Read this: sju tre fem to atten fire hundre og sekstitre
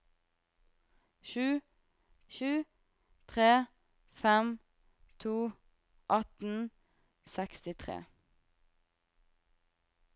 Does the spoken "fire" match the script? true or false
false